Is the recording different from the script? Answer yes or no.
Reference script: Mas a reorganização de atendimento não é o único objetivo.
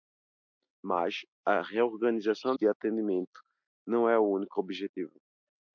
no